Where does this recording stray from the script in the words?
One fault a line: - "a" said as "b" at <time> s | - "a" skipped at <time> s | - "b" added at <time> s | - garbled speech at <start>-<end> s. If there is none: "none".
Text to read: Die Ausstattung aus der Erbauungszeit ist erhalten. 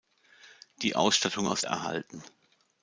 - "der Erbauungszeit ist" skipped at 1.6 s